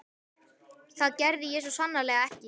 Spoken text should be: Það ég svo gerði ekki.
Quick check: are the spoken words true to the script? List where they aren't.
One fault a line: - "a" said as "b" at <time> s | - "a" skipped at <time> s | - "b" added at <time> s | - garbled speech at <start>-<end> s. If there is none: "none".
- "gerði" added at 1.2 s
- "gerði" said as "sannarlega" at 1.8 s